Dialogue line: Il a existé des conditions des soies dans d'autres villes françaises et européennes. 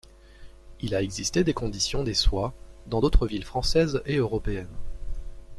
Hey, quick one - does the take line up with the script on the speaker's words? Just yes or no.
yes